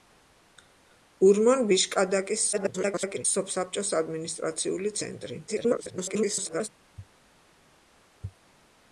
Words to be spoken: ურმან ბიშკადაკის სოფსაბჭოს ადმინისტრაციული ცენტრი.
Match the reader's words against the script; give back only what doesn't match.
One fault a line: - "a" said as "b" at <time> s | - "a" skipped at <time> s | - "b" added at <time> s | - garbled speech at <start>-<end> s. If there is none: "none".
- garbled speech at 2.5-3.3 s
- garbled speech at 5.5-6.7 s